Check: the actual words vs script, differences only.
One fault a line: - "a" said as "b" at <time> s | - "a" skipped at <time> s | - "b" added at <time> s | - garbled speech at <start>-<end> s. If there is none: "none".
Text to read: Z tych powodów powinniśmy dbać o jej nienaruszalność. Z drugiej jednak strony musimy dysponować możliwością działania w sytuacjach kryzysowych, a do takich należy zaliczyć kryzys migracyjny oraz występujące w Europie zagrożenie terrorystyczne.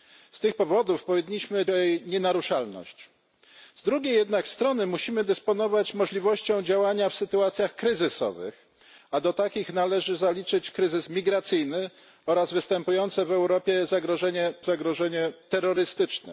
- "dbać" skipped at 1.6 s
- "zagrożenie" added at 14.6 s